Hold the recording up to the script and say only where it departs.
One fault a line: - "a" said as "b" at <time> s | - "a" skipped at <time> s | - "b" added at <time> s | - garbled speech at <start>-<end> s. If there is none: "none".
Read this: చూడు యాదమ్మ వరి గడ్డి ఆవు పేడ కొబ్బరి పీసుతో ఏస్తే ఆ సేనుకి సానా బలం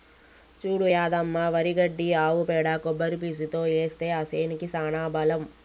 none